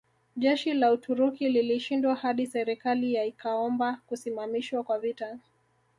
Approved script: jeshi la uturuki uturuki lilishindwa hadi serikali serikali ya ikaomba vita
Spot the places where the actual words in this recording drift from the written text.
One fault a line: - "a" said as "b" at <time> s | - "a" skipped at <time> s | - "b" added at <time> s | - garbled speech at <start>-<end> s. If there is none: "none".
- "uturuki" skipped at 1.5 s
- "serikali" skipped at 3.1 s
- "kusimamishwa kwa" added at 4.1 s